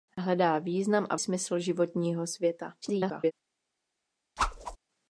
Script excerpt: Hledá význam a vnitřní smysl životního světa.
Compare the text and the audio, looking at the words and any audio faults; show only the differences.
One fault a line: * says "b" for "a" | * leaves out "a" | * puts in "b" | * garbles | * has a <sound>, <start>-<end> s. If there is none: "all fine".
* leaves out "vnitřní"
* garbles
* has a whoosh, 4.4-4.8 s